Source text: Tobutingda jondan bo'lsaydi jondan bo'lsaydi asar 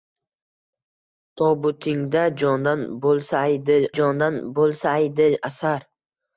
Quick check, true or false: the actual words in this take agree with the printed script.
true